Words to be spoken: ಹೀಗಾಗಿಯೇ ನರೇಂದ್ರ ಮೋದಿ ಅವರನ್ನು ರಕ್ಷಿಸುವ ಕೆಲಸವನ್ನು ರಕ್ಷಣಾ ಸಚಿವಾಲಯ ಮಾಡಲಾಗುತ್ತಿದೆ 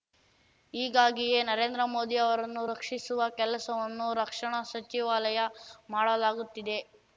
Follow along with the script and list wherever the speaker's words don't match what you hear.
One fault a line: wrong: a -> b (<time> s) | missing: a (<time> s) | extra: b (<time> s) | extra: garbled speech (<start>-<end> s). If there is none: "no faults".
no faults